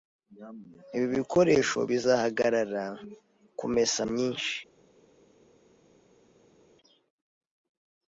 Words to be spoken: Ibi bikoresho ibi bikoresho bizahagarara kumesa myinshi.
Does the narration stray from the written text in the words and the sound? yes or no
yes